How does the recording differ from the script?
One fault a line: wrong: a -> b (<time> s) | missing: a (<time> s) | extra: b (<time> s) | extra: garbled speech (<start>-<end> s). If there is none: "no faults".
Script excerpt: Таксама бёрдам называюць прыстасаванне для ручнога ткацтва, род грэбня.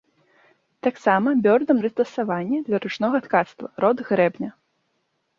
missing: называюць (1.8 s)